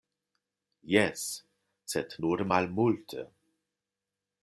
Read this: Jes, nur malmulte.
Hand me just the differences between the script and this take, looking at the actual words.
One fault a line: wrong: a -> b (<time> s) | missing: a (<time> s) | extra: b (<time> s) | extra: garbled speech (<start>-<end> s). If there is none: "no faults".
extra: sed (1.9 s)